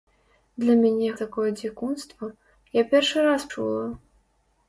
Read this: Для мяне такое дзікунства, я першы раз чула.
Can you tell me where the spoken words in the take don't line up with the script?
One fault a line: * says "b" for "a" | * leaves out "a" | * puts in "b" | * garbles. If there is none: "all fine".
all fine